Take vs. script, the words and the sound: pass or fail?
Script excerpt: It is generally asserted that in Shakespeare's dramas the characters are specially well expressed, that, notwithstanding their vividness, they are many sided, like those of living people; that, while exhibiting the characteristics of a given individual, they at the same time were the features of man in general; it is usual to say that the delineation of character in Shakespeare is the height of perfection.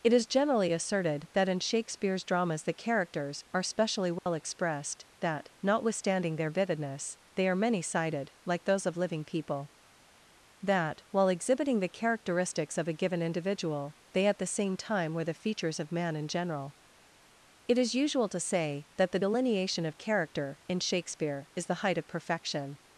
fail